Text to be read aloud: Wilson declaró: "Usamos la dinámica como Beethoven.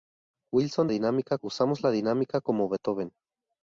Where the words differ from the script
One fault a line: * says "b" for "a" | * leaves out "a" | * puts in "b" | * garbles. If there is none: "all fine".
* says "dinámica" for "declaró"